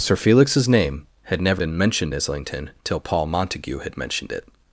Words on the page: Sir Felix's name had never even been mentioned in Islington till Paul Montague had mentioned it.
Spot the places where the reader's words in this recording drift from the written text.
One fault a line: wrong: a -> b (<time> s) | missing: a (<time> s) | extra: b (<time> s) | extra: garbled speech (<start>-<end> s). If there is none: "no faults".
missing: even (1.6 s)
missing: in (2.1 s)